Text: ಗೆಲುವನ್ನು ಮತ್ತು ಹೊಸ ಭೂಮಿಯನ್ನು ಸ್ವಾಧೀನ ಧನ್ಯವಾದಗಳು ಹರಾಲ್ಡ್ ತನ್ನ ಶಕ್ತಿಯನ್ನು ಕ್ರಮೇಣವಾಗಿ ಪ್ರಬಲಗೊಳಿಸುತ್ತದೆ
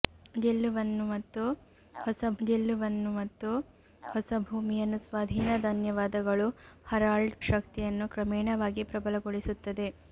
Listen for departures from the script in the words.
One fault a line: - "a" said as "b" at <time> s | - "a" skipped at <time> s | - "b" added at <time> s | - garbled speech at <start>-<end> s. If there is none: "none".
- "ಗೆಲುವನ್ನು ಮತ್ತು ಹೊಸ" added at 2.4 s
- "ತನ್ನ" skipped at 7.4 s